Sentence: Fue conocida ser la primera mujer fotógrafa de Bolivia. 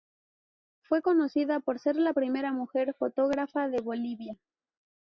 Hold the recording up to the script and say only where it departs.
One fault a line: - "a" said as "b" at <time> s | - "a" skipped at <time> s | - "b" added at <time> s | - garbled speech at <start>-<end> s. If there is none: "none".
- "por" added at 1.6 s